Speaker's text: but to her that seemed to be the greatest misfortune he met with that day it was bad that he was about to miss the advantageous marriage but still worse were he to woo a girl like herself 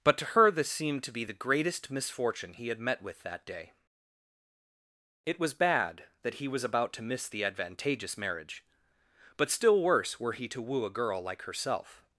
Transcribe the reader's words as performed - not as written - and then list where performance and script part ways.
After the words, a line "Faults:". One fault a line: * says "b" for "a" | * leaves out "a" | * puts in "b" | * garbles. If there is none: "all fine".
but to her this seemed to be the greatest misfortune he had met with that day it was bad that he was about to miss the advantageous marriage but still worse were he to woo a girl like herself
Faults:
* says "this" for "that"
* puts in "had"